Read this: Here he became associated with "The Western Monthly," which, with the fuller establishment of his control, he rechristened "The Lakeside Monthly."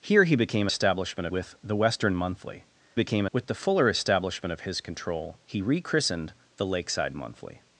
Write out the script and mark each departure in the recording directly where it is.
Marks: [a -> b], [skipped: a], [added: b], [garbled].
Here he became [associated -> establishment] with "The Western Monthly," [which, -> became] with the fuller establishment of his control, he rechristened "The Lakeside Monthly."